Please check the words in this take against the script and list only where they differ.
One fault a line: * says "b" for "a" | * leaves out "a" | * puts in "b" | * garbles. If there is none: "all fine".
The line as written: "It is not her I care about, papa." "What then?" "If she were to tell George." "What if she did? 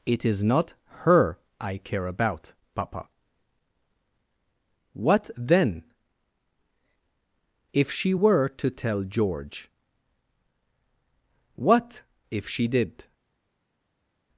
all fine